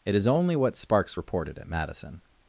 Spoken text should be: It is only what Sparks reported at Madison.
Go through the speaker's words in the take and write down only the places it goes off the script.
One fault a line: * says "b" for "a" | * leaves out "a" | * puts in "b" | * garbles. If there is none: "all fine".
all fine